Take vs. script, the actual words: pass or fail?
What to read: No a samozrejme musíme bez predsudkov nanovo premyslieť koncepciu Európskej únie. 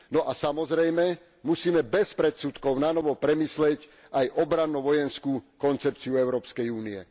fail